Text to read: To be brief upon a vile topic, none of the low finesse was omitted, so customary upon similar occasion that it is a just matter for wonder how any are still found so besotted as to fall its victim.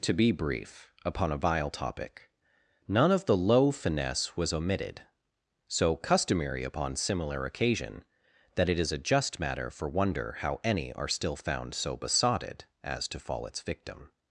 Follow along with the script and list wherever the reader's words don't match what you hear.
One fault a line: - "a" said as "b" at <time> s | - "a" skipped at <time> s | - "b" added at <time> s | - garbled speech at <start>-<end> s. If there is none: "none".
none